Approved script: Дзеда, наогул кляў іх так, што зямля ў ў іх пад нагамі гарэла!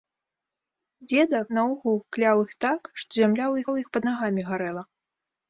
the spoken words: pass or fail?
pass